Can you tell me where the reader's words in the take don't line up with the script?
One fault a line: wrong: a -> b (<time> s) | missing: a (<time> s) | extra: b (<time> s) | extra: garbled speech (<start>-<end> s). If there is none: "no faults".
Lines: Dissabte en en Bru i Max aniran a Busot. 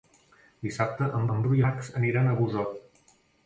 no faults